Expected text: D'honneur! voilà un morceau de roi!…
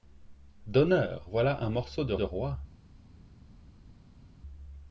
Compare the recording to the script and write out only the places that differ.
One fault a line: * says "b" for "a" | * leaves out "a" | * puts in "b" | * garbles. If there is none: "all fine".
* puts in "de"